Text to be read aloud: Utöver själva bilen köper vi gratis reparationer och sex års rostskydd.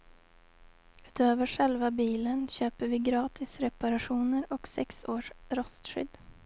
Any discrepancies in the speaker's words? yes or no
no